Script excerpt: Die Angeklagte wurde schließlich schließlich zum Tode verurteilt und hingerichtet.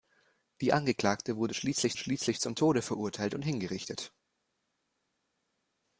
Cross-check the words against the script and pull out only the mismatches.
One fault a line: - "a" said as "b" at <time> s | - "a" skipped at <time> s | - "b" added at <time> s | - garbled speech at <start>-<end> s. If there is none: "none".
none